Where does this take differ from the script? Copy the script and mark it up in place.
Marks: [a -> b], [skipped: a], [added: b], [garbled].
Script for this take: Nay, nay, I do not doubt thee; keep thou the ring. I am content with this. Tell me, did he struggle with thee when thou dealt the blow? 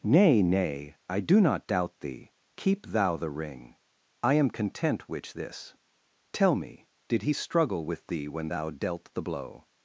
Nay, nay, I do not doubt thee; keep thou the ring. I am content [with -> which] this. Tell me, did he struggle with thee when thou dealt the blow?